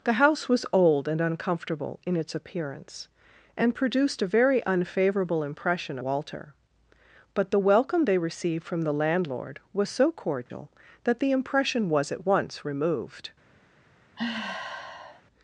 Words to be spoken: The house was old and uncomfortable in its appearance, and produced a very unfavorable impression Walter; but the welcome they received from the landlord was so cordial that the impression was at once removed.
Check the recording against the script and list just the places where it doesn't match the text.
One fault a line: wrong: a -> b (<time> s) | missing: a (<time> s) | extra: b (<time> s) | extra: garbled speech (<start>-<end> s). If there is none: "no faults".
no faults